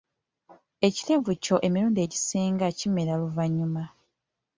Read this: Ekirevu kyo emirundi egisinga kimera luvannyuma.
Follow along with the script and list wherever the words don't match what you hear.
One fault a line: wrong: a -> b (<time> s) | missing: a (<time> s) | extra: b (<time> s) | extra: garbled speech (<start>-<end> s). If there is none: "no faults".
no faults